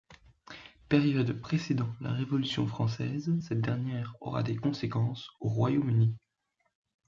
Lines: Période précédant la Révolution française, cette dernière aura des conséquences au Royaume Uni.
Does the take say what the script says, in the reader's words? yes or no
yes